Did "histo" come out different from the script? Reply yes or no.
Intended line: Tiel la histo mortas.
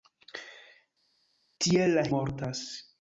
yes